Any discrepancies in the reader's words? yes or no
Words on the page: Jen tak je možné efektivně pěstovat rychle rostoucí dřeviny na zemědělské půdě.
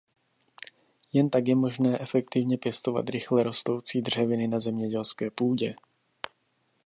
no